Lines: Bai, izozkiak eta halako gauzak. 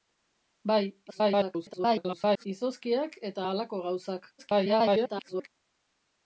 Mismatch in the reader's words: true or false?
true